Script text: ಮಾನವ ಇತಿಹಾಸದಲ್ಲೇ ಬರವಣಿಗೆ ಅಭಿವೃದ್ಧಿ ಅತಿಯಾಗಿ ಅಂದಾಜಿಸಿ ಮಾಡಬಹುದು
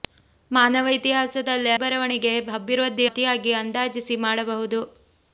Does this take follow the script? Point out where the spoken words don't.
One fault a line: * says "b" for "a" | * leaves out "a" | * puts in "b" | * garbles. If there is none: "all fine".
all fine